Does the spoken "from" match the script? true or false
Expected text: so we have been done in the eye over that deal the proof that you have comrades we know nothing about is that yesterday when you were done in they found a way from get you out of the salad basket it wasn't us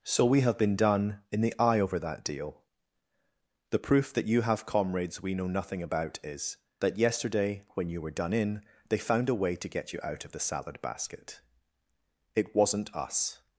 false